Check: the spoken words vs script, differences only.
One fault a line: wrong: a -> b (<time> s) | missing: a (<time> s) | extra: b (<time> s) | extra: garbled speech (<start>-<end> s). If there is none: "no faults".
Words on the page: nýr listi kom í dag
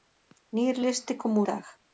no faults